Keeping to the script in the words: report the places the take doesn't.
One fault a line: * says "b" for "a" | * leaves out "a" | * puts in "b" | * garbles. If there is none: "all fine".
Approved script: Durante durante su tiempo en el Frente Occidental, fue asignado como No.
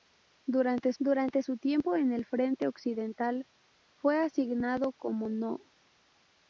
all fine